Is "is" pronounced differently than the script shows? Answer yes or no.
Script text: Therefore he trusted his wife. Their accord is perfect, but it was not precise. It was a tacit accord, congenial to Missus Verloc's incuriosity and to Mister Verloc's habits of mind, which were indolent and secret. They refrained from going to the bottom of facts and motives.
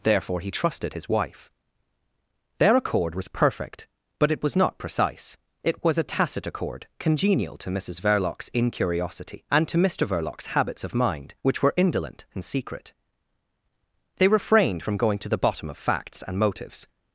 yes